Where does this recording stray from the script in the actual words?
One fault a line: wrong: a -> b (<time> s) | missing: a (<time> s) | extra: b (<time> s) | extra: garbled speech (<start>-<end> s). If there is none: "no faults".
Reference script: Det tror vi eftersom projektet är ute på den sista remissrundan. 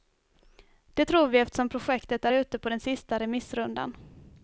no faults